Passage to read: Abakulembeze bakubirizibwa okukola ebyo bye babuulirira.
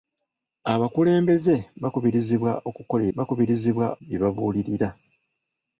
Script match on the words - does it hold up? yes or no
no